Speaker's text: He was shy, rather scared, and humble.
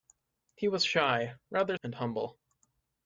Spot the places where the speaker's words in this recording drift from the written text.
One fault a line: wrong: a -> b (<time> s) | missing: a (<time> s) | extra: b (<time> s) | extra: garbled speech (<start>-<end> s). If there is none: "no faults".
missing: scared (1.8 s)